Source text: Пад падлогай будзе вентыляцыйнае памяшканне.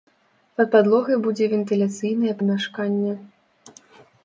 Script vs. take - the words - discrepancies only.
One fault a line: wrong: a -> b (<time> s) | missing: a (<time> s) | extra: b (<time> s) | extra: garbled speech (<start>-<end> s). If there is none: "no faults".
no faults